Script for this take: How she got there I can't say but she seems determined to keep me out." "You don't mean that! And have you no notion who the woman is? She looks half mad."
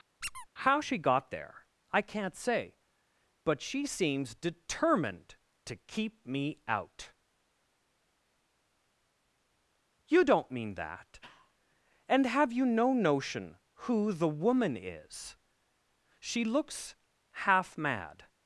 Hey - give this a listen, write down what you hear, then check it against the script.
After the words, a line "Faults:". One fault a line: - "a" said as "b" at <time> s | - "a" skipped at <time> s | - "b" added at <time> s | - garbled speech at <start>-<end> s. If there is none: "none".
How she got there I can't say but she seems determined to keep me out." "You don't mean that! And have you no notion who the woman is? She looks half mad."
Faults:
none